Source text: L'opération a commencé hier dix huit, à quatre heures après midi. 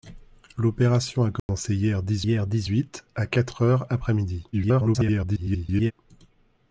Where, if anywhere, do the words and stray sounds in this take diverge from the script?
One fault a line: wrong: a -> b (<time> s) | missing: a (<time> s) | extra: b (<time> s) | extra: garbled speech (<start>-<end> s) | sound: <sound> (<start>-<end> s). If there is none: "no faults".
sound: dropout (1.4-1.5 s)
extra: hier dix (2.2 s)
extra: garbled speech (4.5-5.9 s)